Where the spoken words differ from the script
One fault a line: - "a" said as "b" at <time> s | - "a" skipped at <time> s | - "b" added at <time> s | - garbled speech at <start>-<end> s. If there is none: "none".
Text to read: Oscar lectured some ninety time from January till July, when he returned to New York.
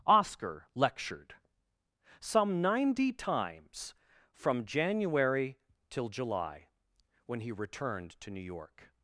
- "time" said as "times" at 3.1 s